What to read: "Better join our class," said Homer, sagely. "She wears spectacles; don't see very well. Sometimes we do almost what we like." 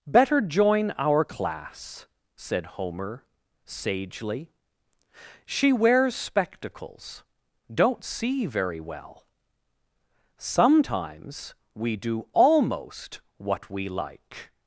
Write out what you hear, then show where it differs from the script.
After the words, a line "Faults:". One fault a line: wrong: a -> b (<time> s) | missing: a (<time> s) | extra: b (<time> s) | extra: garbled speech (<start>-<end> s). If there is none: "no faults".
"Better join our class," said Homer, sagely. "She wears spectacles; don't see very well. Sometimes we do almost what we like."
Faults:
no faults